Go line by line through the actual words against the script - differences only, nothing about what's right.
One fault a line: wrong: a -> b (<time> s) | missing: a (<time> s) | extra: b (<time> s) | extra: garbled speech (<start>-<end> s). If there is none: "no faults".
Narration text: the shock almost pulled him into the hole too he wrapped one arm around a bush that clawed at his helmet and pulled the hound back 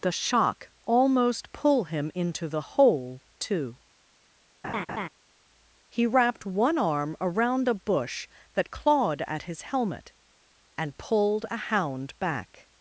wrong: pulled -> pull (1.5 s)
wrong: the -> a (11.5 s)